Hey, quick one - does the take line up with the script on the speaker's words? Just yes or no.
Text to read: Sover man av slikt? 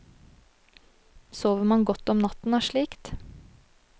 no